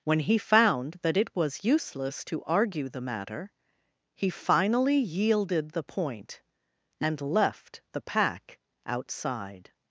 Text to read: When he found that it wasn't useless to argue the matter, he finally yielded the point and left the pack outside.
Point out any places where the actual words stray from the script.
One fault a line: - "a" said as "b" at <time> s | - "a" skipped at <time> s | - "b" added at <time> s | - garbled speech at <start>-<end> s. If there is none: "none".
- "wasn't" said as "was" at 1.4 s